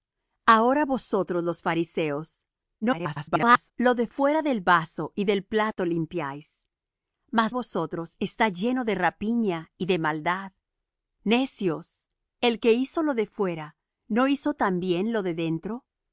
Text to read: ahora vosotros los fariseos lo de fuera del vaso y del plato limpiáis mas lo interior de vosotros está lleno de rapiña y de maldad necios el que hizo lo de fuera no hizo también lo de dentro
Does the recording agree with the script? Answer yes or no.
no